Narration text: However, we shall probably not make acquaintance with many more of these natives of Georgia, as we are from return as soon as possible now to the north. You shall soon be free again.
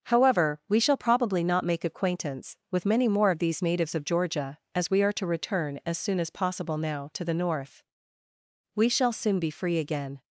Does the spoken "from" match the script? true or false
false